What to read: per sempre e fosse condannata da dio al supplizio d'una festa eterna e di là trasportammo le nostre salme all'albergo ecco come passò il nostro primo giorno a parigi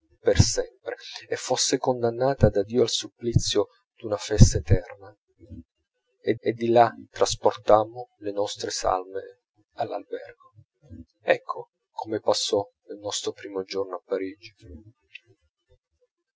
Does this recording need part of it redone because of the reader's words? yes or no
yes